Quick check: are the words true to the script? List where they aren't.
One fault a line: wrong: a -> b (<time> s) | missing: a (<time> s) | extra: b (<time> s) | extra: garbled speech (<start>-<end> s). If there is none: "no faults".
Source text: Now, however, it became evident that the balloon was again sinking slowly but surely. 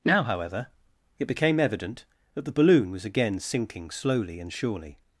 wrong: but -> and (4.4 s)